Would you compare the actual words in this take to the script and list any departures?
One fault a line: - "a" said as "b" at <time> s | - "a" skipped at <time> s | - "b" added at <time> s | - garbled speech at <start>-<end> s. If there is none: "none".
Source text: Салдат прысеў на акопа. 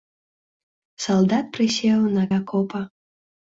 none